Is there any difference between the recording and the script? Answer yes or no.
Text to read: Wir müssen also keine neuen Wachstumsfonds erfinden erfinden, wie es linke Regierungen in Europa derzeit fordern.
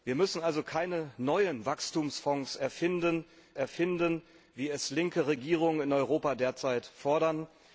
no